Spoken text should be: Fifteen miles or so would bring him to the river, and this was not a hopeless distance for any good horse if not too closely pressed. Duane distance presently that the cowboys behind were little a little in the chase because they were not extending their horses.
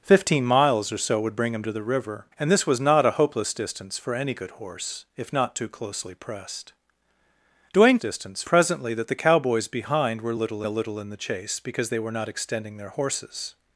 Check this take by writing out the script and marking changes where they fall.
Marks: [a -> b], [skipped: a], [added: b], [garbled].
Fifteen miles or so would bring him to the river, and this was not a hopeless distance for any good horse if not too closely pressed. Duane distance presently that the cowboys behind were little a little in the chase because they were not extending their horses.